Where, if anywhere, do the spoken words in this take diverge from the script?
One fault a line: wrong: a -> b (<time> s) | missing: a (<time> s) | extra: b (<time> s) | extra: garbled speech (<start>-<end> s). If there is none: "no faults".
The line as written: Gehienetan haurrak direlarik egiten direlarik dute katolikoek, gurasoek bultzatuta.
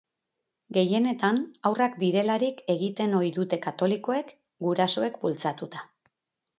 wrong: direlarik -> ohi (3.2 s)